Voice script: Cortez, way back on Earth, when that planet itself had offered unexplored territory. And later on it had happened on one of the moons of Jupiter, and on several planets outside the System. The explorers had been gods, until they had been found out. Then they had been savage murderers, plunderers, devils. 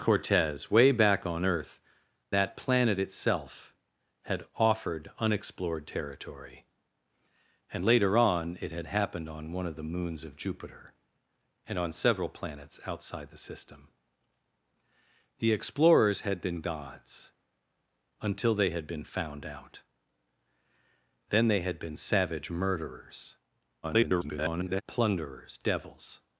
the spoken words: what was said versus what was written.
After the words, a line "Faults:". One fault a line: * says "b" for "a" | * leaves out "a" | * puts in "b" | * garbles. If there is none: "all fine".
Cortez, way back on Earth, that planet itself had offered unexplored territory. And later on it had happened on one of the moons of Jupiter, and on several planets outside the System. The explorers had been gods, until they had been found out. Then they had been savage murderers, [garbled] plunderers, devils.
Faults:
* leaves out "when"
* garbles